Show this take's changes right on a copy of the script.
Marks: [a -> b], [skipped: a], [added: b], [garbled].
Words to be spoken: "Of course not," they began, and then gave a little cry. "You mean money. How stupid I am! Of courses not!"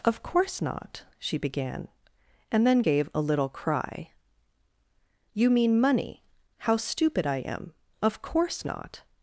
"Of course not," [they -> she] began, and then gave a little cry. "You mean money. How stupid I am! Of [courses -> course] not!"